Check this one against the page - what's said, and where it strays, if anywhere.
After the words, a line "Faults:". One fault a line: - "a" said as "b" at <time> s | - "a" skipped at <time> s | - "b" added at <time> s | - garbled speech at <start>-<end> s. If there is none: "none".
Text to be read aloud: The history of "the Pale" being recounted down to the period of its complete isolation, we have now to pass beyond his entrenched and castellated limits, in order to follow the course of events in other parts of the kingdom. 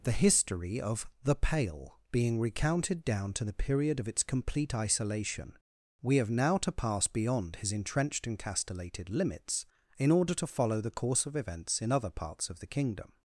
The history of "the Pale" being recounted down to the period of its complete isolation, we have now to pass beyond his entrenched and castellated limits, in order to follow the course of events in other parts of the kingdom.
Faults:
none